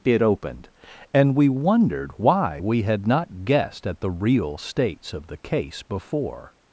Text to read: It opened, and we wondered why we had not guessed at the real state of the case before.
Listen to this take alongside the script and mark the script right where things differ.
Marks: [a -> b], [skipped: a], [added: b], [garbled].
It opened, and we wondered why we had not guessed at the real [state -> states] of the case before.